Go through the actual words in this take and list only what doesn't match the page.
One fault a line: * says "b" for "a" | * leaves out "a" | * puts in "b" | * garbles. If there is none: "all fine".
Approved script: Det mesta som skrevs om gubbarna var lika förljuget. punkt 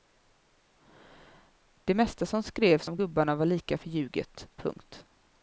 all fine